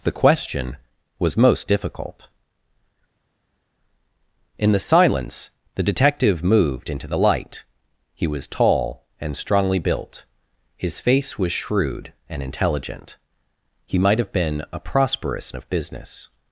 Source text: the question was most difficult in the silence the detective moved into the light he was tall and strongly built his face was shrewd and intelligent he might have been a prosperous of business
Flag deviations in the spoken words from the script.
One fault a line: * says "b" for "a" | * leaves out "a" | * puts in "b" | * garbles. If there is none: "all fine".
all fine